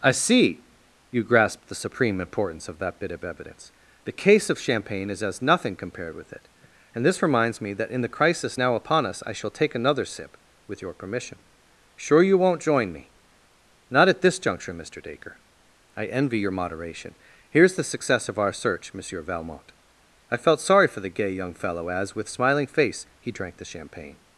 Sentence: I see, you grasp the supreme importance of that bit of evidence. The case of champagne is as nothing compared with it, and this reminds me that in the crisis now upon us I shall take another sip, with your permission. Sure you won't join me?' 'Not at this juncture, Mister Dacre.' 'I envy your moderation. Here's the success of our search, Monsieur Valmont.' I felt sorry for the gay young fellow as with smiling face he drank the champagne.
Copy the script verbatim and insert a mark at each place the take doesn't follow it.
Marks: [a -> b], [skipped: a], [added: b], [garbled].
I see, you grasp the supreme importance of that bit of evidence. The case of champagne is as nothing compared with it, and this reminds me that in the crisis now upon us I shall take another sip, with your permission. Sure you won't join me?' 'Not at this juncture, Mister Dacre.' 'I envy your moderation. Here's the success of our search, Monsieur Valmont.' I felt sorry for the gay young fellow as with smiling face he drank the champagne.